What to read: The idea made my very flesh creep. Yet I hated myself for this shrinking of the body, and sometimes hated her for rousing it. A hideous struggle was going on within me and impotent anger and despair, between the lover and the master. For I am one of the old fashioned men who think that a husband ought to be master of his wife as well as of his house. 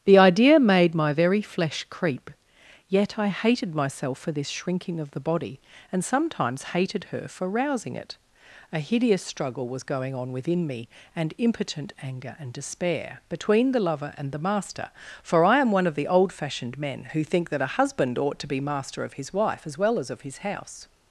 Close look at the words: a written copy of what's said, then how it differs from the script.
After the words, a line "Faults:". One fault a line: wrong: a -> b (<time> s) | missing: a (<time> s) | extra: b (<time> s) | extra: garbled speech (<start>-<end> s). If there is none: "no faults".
The idea made my very flesh creep. Yet I hated myself for this shrinking of the body, and sometimes hated her for rousing it. A hideous struggle was going on within me and impotent anger and despair, between the lover and the master. For I am one of the old fashioned men who think that a husband ought to be master of his wife as well as of his house.
Faults:
no faults